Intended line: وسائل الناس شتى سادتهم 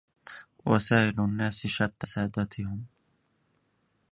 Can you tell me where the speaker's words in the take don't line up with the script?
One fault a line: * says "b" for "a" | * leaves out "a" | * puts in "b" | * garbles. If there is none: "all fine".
all fine